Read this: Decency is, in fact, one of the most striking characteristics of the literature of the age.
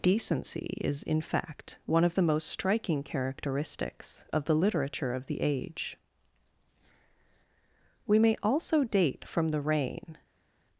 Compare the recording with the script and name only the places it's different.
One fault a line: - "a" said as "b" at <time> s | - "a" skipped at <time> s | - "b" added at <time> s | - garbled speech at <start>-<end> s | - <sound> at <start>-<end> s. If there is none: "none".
- "We may also date from the reign" added at 8.1 s